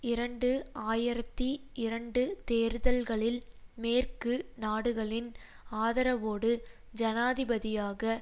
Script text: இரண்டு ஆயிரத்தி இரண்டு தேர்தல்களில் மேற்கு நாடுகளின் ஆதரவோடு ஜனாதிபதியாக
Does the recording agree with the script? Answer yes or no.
yes